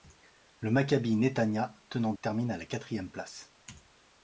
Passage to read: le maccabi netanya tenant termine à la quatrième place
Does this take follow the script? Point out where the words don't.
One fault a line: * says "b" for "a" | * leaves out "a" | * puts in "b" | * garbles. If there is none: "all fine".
all fine